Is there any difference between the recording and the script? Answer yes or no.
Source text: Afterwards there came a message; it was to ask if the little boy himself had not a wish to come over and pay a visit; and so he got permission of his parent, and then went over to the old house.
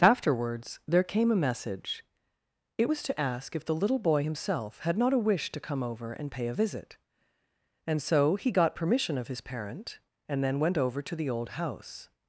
no